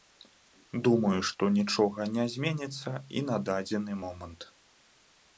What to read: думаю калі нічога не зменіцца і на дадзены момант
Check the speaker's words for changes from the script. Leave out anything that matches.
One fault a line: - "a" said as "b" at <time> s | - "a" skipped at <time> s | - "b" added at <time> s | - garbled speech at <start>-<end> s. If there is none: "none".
- "калі" said as "што" at 1.3 s